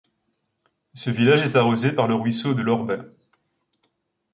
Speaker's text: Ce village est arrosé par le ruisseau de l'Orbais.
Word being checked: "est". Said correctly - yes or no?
yes